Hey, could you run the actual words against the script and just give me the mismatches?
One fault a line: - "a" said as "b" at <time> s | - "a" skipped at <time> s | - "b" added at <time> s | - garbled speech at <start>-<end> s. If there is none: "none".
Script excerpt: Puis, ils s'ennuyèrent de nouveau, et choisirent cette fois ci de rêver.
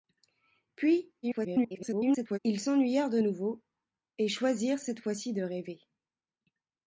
- garbled speech at 1.2-2.4 s